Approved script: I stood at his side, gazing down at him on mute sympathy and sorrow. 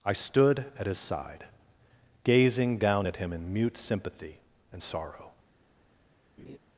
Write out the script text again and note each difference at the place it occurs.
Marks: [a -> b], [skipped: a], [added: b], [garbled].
I stood at his side, gazing down at him [on -> in] mute sympathy and sorrow.